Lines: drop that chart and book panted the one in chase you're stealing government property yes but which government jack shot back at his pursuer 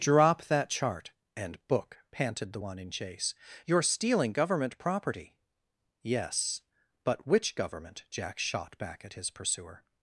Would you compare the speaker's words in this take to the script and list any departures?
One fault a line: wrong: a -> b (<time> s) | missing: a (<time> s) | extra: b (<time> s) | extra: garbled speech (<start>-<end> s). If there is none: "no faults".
no faults